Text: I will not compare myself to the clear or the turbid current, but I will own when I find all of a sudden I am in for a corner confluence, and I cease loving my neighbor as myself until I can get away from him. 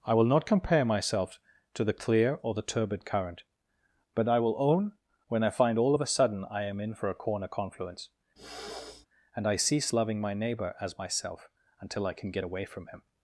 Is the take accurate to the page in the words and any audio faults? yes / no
no